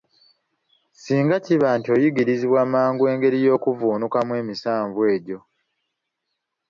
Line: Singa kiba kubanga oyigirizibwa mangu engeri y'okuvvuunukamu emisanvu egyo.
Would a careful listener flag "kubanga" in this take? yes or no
yes